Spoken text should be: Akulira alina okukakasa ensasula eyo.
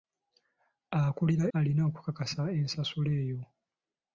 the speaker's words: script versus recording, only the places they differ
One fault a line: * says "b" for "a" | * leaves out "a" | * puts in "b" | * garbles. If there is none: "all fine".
all fine